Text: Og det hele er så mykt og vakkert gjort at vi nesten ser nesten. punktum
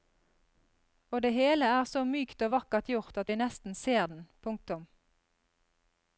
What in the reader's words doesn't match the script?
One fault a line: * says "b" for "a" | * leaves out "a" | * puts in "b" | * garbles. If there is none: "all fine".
* says "den" for "nesten"